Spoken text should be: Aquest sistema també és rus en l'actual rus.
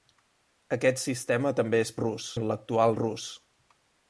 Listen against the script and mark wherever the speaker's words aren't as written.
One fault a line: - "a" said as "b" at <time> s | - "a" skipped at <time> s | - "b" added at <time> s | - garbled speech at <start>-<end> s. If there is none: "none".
none